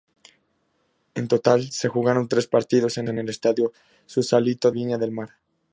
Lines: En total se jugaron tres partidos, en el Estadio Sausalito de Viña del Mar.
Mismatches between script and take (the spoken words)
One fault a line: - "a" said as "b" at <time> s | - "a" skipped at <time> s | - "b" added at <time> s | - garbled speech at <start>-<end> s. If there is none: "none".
- "en" added at 3.1 s
- "de" skipped at 4.7 s